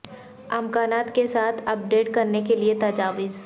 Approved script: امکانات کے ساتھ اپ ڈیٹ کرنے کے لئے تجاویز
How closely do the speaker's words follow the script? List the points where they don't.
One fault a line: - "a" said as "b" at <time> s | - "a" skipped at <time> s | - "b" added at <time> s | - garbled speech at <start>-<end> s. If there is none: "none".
none